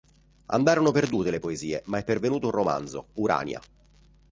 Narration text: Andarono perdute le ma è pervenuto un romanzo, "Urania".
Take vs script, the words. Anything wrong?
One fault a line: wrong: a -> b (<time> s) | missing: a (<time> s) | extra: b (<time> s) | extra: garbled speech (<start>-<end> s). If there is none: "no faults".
extra: poesie (1.4 s)